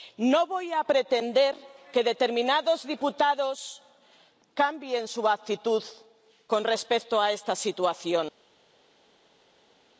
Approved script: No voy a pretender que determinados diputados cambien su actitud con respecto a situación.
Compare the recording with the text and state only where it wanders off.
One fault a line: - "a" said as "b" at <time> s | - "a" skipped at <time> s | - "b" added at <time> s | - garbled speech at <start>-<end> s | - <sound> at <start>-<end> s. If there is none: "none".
- "esta" added at 7.3 s